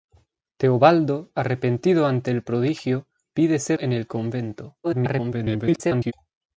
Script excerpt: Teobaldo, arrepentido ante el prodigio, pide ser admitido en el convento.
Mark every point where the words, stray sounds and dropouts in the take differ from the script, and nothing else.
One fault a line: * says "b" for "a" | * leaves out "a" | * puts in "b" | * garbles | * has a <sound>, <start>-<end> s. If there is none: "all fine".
* leaves out "admitido"
* garbles